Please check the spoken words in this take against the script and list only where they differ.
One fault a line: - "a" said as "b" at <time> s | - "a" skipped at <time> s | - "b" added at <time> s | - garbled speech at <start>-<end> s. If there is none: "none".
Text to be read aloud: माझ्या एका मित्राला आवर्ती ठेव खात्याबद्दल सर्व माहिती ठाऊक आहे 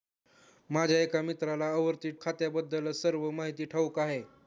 - "ठेव" skipped at 2.1 s